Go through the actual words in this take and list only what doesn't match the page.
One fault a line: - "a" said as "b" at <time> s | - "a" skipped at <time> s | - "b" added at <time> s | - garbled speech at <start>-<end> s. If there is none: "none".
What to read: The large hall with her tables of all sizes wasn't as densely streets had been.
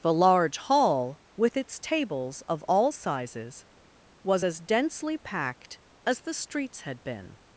- "her" said as "its" at 1.6 s
- "wasn't" said as "was" at 4.2 s
- "packed as the" added at 5.2 s